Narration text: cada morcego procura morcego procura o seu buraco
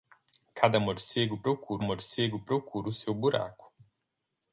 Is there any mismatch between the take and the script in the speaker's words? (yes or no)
no